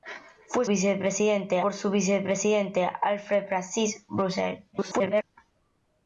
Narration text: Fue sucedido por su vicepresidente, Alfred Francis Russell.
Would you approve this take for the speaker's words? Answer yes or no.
no